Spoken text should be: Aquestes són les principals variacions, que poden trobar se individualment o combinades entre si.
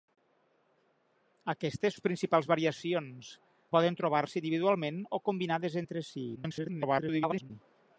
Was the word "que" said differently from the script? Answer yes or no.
yes